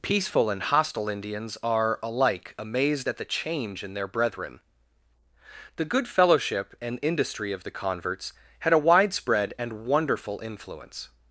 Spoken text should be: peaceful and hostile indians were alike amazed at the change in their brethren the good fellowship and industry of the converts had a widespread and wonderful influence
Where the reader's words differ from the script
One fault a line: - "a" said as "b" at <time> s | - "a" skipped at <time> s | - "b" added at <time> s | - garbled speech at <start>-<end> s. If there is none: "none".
- "were" said as "are" at 1.6 s